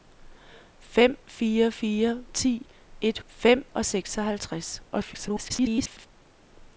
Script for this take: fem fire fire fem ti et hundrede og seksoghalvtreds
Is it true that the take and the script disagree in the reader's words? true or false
true